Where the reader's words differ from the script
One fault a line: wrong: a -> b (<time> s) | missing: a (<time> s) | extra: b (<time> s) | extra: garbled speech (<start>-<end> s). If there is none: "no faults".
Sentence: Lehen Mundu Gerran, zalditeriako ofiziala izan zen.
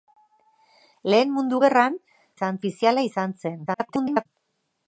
wrong: zalditeriako -> izan (2.4 s)
extra: garbled speech (3.7-4.3 s)